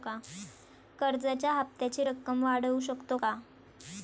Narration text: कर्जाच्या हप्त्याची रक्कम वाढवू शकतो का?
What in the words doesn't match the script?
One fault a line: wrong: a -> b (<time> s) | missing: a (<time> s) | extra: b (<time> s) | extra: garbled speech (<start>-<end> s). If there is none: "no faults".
no faults